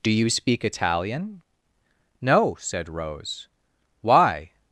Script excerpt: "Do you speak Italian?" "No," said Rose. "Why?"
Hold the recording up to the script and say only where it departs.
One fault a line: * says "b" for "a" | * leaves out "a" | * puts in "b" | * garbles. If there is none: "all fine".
all fine